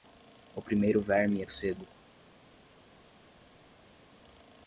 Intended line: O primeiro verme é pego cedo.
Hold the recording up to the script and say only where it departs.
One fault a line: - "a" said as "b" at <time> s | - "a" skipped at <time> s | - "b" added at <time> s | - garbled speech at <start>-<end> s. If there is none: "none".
- "pego" skipped at 1.4 s